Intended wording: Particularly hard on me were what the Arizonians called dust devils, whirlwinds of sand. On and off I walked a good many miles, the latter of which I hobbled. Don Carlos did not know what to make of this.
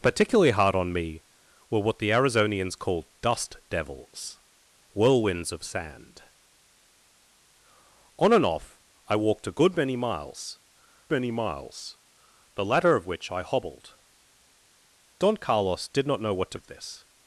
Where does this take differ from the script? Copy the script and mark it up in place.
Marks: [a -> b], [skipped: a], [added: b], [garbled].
Particularly hard on me were what the Arizonians called dust devils, whirlwinds of sand. On and off I walked a good many miles, [added: many miles] the latter of which I hobbled. Don Carlos did not know what to [skipped: make] of this.